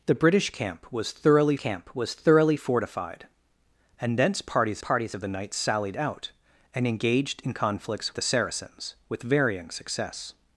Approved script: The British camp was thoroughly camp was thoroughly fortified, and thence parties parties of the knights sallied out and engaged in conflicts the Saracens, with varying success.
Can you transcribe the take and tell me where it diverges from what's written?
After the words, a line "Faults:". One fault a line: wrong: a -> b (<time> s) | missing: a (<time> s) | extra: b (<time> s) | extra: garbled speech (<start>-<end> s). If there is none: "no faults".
The British camp was thoroughly camp was thoroughly fortified, and thence parties parties of the knights sallied out and engaged in conflicts the Saracens, with varying success.
Faults:
no faults